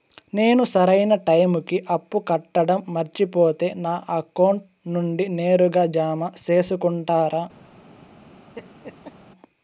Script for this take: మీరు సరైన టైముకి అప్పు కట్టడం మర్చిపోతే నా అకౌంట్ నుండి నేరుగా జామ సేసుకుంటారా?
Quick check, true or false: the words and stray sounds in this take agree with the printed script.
false